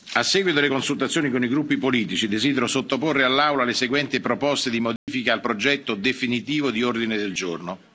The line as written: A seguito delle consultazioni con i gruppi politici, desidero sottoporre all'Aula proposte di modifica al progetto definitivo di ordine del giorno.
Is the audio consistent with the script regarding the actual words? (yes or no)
no